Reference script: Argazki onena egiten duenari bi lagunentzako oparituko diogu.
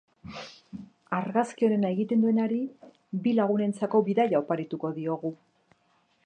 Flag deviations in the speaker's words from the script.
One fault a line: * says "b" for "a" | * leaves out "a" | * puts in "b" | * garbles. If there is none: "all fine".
* puts in "bidaia"